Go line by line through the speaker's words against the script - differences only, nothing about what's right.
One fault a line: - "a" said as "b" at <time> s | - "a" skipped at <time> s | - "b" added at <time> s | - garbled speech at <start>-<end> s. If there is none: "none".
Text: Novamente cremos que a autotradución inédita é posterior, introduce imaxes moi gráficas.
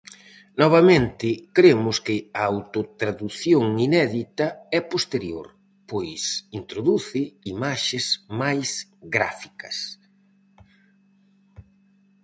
- "pois" added at 5.9 s
- "moi" said as "máis" at 8.4 s